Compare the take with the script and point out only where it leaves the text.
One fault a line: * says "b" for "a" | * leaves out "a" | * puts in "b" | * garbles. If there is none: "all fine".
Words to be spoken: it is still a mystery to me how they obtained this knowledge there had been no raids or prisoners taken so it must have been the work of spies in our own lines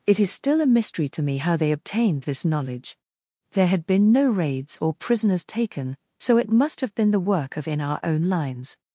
* leaves out "spies"